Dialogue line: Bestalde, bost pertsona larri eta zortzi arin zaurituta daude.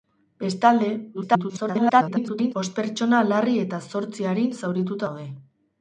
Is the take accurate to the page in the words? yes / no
no